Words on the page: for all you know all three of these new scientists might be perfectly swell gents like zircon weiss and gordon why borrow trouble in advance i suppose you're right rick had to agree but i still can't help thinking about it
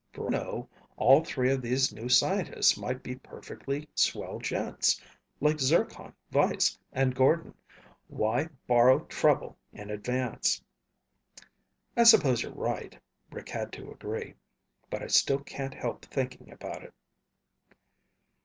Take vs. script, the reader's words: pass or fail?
fail